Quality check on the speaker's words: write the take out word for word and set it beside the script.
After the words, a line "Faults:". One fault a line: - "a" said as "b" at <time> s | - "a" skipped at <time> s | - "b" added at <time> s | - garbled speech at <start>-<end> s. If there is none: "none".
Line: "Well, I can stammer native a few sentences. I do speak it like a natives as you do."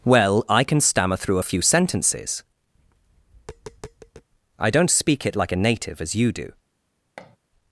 "Well, I can stammer through a few sentences. I don't speak it like a native as you do."
Faults:
- "native" said as "through" at 1.2 s
- "do" said as "don't" at 4.7 s
- "natives" said as "native" at 5.6 s